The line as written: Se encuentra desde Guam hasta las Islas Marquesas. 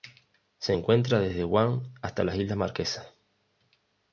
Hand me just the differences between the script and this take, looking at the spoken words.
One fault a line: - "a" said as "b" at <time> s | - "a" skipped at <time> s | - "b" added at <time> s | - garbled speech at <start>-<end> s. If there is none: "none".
none